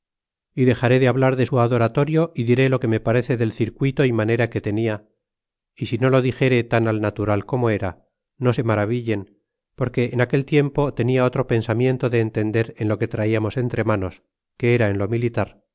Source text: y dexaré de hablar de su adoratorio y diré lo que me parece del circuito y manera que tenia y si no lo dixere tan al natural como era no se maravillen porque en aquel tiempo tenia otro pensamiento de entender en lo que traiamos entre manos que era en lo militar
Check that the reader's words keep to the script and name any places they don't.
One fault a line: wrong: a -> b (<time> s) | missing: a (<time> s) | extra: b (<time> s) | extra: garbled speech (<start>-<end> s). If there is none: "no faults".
no faults